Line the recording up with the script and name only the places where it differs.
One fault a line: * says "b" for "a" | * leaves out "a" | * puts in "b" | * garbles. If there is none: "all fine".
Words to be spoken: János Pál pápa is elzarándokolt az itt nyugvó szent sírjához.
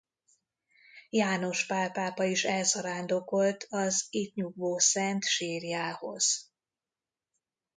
all fine